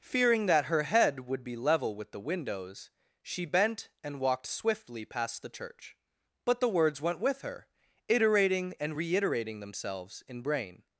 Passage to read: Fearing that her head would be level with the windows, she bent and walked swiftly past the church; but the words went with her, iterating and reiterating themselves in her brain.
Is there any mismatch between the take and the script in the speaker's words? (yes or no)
yes